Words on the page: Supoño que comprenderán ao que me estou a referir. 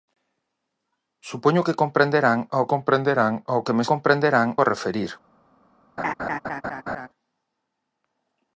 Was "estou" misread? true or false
true